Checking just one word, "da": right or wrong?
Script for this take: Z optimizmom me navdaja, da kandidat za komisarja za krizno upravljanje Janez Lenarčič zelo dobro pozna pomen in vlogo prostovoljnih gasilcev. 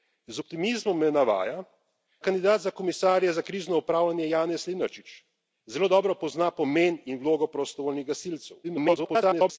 wrong